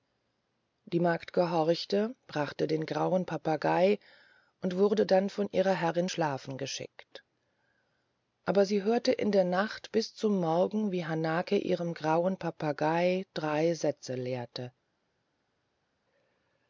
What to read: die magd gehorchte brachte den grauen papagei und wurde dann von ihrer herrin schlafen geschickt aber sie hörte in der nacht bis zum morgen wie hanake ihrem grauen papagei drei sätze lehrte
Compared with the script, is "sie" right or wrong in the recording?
right